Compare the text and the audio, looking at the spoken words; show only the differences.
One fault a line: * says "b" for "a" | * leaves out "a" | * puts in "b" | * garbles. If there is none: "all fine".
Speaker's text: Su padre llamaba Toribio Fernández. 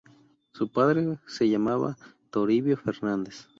* puts in "se"